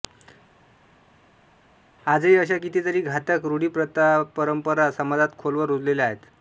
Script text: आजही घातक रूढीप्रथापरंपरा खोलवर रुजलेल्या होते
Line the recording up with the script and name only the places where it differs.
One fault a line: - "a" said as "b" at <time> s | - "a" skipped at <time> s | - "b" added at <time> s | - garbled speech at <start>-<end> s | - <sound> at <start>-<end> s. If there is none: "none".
- "अशा कितीतरी" added at 2.4 s
- "समाजात" added at 4.9 s
- "होते" said as "आहेत" at 6.1 s